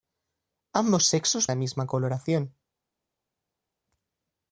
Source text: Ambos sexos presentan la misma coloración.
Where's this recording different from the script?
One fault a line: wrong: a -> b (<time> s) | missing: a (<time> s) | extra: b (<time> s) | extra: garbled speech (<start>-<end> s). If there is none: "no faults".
missing: presentan (1.5 s)